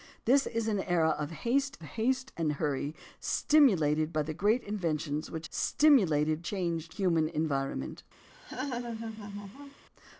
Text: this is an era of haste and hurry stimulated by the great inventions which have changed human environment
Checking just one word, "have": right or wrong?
wrong